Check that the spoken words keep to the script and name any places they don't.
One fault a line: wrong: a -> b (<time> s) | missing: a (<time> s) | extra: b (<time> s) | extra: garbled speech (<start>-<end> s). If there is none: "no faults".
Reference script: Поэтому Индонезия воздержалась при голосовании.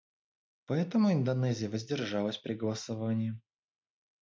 no faults